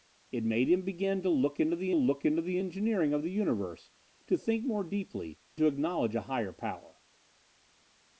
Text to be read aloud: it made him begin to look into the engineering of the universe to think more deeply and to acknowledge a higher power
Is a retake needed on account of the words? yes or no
yes